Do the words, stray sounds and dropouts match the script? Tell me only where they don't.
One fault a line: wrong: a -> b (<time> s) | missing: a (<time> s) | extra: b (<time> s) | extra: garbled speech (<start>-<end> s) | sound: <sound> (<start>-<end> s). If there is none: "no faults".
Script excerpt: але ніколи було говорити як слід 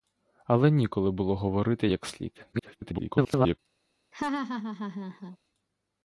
extra: garbled speech (2.5-3.6 s)
sound: laugh (4.1-5.4 s)